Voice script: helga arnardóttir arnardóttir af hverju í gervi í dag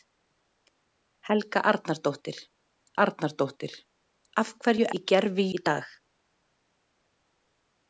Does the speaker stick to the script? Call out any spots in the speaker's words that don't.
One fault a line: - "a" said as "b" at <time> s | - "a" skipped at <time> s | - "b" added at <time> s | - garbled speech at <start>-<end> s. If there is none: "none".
none